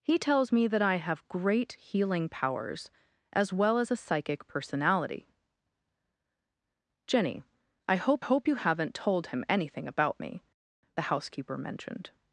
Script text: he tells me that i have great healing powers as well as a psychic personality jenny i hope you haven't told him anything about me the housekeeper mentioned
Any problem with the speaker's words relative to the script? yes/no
yes